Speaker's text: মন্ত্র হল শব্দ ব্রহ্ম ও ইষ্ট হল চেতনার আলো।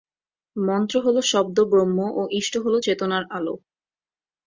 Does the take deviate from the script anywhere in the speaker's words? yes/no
no